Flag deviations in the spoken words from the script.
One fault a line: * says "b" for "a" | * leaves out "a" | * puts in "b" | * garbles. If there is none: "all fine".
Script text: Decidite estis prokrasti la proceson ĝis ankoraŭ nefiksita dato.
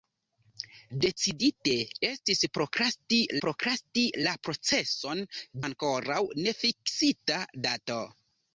* puts in "prokrasti"
* leaves out "ĝis"